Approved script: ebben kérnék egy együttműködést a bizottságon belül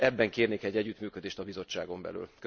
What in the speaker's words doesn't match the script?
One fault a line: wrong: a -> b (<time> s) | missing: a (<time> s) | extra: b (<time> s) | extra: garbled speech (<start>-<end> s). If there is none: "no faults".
no faults